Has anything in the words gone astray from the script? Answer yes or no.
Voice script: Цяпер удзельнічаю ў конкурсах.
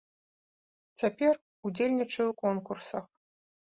no